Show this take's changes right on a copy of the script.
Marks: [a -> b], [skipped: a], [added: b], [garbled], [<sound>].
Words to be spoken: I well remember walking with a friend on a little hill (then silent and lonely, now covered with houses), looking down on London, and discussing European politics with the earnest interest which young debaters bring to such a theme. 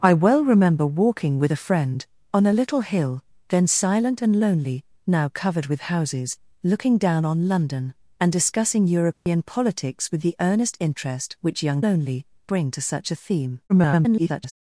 I well remember walking with a friend on a little hill (then silent and lonely, now covered with houses), looking down on London, and discussing European [dropout] politics with the earnest interest which young [debaters -> lonely] bring to such a theme. [garbled]